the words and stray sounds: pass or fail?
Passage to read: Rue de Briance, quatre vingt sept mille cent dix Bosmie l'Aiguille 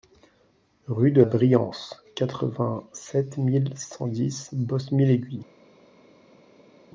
pass